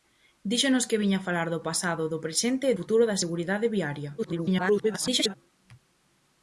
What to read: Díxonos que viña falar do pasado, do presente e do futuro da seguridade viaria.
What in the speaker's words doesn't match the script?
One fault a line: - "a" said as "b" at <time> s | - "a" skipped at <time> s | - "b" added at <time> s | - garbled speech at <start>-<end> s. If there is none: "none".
- "do" skipped at 2.8 s
- garbled speech at 4.2-5.3 s